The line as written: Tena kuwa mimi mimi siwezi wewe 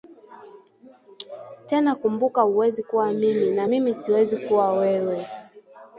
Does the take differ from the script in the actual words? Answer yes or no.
yes